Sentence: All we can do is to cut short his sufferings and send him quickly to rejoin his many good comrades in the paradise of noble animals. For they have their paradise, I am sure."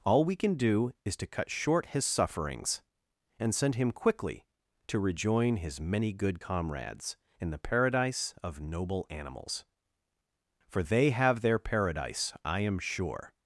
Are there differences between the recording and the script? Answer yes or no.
no